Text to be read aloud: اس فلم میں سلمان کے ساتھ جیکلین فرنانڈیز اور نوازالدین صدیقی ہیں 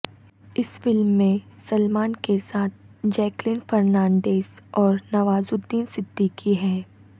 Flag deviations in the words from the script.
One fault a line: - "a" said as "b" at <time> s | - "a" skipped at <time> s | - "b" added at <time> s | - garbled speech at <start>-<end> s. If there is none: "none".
none